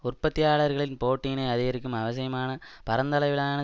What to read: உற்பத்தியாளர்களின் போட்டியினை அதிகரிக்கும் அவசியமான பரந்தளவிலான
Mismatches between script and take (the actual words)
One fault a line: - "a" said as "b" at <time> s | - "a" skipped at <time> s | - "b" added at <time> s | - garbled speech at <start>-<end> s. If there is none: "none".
none